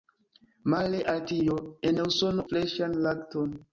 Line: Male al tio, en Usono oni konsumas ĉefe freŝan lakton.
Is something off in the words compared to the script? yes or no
yes